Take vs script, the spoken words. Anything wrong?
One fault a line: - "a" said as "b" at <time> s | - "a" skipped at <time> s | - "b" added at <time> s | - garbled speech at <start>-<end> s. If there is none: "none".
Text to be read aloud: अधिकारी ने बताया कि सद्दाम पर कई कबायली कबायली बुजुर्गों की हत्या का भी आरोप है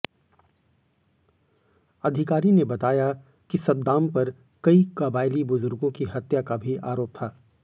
- "कबायली" skipped at 5.4 s
- "है" said as "था" at 7.1 s